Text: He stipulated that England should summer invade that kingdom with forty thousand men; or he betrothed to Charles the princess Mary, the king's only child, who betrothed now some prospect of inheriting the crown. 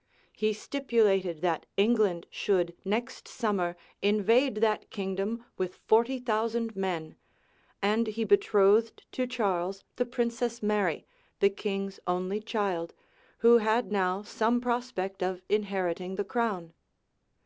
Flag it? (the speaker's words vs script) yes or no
yes